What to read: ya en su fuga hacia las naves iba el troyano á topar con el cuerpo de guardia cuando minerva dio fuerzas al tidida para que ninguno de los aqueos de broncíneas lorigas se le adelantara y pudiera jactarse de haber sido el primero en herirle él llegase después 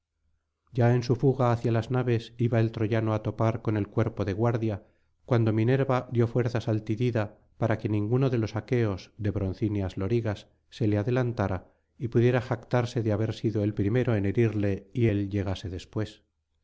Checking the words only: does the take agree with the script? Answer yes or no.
no